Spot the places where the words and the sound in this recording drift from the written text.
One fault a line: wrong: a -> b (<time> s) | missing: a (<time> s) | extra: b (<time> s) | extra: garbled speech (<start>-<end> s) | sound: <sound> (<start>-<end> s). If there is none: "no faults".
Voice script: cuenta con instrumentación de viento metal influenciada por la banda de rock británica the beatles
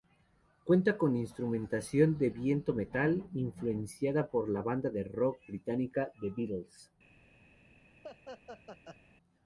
sound: laugh (8.0-9.0 s)